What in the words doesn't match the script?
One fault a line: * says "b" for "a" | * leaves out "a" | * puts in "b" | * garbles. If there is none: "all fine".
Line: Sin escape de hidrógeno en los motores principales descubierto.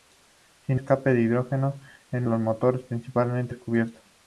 all fine